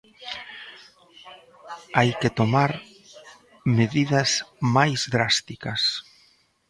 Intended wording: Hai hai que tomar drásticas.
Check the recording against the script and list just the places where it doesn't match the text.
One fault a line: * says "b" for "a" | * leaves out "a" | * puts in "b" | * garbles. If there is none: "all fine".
* leaves out "hai"
* puts in "medidas máis"